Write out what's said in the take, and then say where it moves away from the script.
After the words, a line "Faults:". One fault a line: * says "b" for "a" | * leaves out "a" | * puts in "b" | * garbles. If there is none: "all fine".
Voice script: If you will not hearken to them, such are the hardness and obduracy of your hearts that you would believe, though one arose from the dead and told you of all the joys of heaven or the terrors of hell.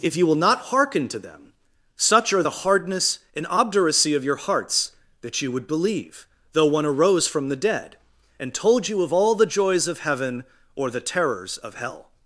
If you will not hearken to them, such are the hardness and obduracy of your hearts that you would believe, though one arose from the dead and told you of all the joys of heaven or the terrors of hell.
Faults:
all fine